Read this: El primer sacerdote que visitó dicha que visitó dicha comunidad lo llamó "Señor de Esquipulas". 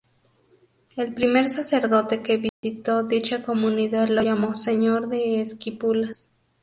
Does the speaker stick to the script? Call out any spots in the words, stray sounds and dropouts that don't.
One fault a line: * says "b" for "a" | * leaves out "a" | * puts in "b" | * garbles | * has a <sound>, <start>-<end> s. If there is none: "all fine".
* has a dropout, 2.5-2.6 s
* leaves out "que visitó dicha"